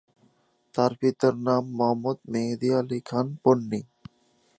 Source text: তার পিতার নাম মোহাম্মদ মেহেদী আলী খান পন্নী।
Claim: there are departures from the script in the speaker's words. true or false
false